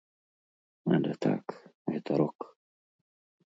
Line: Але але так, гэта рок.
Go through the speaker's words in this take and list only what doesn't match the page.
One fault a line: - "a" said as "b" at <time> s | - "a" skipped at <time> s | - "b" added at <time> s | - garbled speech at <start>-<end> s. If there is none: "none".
- "але" skipped at 1.1 s